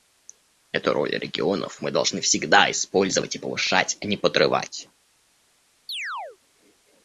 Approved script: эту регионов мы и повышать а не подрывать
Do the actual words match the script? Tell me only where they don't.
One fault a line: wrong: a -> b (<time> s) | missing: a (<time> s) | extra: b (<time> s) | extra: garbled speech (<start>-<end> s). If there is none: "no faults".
extra: роль (0.9 s)
extra: должны всегда использовать (1.9 s)